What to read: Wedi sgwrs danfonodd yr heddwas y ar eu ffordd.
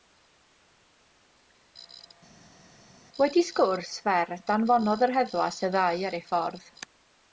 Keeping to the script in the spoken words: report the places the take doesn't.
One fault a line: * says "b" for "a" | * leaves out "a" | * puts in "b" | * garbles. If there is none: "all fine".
* puts in "fer"
* puts in "ddau"